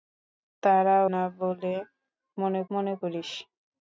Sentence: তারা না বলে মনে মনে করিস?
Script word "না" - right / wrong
right